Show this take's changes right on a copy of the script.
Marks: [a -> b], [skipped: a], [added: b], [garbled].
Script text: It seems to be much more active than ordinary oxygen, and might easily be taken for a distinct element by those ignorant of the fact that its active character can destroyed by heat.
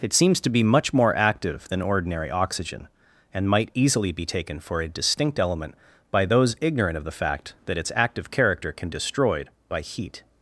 It seems to be much more active than ordinary oxygen, and might easily be taken for a distinct element by those ignorant of the fact that its active character can destroyed by heat.